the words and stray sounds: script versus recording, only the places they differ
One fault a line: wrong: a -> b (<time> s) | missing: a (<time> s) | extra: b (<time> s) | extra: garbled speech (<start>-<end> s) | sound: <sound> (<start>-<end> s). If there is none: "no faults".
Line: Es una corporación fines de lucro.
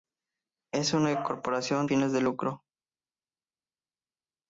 no faults